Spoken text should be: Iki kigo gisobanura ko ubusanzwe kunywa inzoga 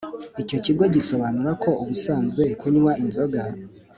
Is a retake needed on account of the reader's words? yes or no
yes